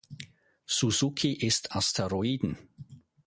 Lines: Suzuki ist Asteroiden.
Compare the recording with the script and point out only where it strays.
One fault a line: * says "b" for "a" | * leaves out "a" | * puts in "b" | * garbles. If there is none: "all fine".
all fine